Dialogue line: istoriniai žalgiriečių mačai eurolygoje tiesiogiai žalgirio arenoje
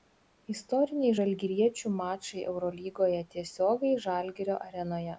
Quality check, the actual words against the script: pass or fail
pass